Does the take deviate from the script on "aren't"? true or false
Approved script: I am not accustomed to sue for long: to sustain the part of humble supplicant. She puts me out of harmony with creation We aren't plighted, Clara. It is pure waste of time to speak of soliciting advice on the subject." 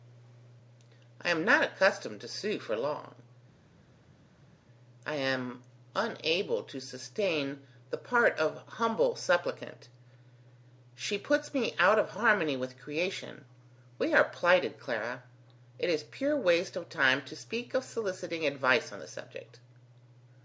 true